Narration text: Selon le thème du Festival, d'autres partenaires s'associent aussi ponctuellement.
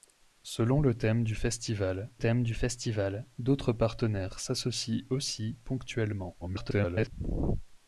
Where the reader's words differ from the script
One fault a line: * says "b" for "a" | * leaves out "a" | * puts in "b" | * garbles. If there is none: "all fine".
* puts in "thème du Festival"
* garbles